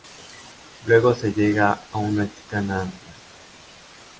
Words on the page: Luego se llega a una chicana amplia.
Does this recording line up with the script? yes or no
yes